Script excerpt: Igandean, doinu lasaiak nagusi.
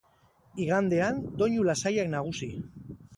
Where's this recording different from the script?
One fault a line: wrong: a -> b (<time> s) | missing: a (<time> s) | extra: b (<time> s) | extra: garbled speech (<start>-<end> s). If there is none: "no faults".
no faults